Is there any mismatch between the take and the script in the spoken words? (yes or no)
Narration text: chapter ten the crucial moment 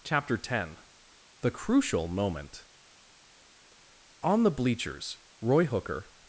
yes